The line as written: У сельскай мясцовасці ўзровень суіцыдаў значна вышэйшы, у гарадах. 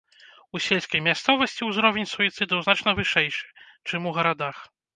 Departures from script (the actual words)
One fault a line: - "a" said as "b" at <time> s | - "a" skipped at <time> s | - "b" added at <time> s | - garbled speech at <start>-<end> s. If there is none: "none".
- "чым" added at 3.9 s